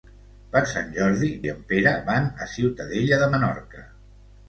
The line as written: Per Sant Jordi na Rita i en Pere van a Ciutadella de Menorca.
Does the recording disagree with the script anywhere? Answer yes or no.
yes